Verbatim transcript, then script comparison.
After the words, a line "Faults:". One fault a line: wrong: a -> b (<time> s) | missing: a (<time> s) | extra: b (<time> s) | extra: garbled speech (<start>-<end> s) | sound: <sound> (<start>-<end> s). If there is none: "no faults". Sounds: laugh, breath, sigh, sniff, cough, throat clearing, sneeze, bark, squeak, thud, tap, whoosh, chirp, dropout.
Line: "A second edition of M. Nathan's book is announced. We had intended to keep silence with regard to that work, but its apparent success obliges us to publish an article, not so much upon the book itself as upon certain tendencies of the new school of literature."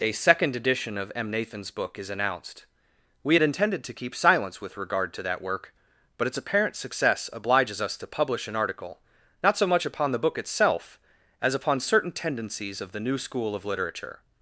"A second edition of M. Nathan's book is announced. We had intended to keep silence with regard to that work, but its apparent success obliges us to publish an article, not so much upon the book itself as upon certain tendencies of the new school of literature."
Faults:
no faults